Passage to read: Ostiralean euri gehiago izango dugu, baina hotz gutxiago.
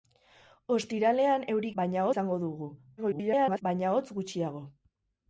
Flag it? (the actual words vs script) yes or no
yes